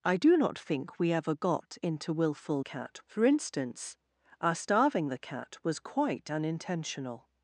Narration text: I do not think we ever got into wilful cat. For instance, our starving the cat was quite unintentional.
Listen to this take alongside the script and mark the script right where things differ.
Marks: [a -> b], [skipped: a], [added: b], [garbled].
I do not think we ever got into wilful cat. For instance, our starving the cat was quite unintentional.